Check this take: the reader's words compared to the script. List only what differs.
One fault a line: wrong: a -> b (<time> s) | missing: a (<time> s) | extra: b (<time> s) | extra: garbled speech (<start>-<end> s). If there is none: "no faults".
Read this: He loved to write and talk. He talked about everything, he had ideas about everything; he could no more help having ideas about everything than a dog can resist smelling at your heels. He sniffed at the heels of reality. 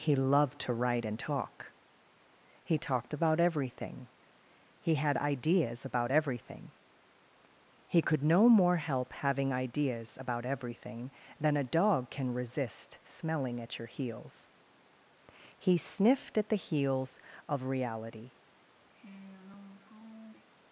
no faults